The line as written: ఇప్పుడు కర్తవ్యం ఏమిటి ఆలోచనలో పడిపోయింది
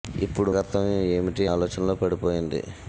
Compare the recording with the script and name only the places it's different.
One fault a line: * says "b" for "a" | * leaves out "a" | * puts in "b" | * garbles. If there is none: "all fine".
all fine